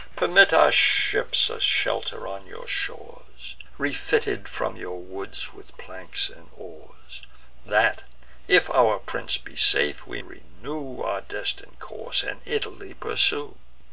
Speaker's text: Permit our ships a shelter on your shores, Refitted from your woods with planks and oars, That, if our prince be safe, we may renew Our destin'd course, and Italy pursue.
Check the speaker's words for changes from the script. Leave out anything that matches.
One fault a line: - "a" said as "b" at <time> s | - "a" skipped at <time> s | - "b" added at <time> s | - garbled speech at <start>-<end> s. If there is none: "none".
- "may" skipped at 10.2 s